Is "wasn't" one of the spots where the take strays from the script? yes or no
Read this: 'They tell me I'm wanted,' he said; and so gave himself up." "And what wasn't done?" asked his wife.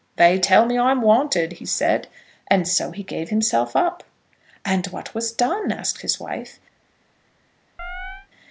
yes